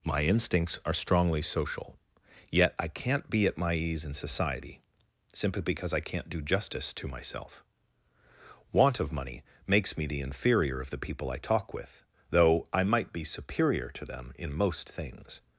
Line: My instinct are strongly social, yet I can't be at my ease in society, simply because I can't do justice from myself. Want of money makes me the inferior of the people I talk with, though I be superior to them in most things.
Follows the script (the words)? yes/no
no